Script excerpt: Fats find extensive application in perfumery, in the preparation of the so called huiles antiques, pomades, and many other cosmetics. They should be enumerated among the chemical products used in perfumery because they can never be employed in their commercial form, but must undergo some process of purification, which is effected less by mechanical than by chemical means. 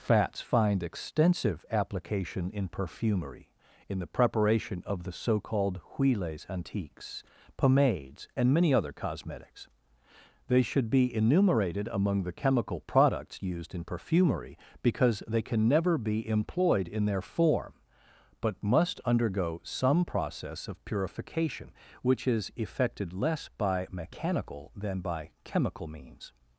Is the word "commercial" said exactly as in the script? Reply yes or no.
no